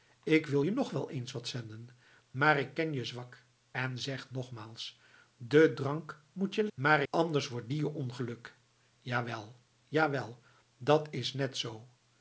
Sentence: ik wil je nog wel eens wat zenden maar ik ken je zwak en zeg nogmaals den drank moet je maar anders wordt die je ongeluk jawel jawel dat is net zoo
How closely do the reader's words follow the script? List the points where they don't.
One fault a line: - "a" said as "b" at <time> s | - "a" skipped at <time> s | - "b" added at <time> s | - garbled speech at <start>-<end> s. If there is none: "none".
none